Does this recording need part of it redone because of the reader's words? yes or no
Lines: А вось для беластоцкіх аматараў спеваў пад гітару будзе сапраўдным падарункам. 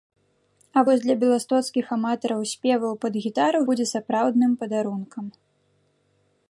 no